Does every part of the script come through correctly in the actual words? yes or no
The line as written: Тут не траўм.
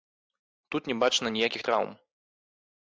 no